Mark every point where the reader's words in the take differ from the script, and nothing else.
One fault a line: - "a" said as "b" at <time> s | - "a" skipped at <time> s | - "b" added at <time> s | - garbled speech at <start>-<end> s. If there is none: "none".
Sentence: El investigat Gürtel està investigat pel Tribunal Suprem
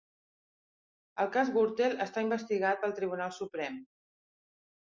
- "investigat" said as "cas" at 1.4 s